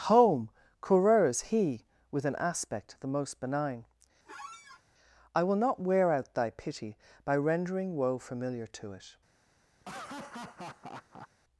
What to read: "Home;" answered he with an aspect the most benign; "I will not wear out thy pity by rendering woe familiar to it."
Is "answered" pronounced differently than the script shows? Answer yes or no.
yes